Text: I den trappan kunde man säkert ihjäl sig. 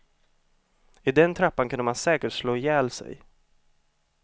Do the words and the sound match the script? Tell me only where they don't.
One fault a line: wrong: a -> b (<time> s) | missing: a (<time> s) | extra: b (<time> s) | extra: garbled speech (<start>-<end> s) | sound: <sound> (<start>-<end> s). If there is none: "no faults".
extra: slå (2.3 s)